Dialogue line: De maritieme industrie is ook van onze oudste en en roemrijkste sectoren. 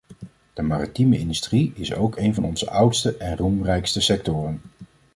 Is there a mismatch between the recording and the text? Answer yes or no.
yes